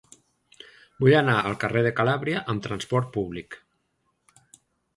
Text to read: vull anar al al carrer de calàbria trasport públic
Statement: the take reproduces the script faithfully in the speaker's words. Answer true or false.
false